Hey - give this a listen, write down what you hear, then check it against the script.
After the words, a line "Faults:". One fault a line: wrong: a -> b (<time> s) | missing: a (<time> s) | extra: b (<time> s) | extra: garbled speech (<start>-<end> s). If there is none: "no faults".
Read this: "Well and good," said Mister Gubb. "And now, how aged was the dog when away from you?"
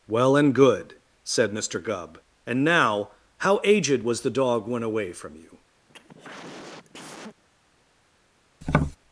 "Well and good," said Mister Gubb. "And now, how aged was the dog when away from you?"
Faults:
no faults